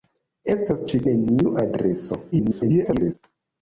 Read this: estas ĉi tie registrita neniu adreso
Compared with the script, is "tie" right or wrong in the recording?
wrong